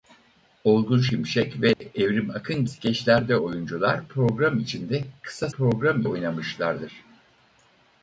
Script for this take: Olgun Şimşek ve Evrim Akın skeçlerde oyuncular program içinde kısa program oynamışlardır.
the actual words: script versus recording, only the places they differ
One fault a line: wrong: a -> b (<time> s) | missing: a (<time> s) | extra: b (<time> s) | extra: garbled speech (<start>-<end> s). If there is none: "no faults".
no faults